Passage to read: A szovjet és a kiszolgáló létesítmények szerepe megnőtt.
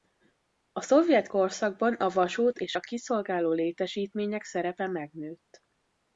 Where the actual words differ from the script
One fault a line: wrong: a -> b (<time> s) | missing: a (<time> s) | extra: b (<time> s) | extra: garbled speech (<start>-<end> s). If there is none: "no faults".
extra: korszakban a vasút (1.3 s)